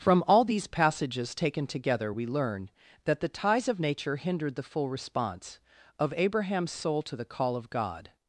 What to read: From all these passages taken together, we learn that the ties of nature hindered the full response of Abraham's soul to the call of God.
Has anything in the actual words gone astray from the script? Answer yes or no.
no